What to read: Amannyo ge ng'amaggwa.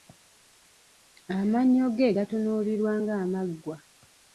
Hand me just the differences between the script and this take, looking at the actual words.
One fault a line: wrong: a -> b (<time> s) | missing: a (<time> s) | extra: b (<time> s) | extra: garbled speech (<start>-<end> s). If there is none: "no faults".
extra: gatunuulirwa (2.1 s)